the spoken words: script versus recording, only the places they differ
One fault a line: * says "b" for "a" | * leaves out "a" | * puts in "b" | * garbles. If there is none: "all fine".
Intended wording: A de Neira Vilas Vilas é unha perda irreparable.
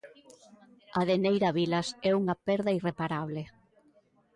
* leaves out "Vilas"